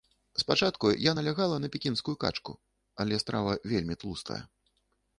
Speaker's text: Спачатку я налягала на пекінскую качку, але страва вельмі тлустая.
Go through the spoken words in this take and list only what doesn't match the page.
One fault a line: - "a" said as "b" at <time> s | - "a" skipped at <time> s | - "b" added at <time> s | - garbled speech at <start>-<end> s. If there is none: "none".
none